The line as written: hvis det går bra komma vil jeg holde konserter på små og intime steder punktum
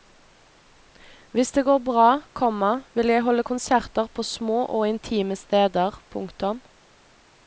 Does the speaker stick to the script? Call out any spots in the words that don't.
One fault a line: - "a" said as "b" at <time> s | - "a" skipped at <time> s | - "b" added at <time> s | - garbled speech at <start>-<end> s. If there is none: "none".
none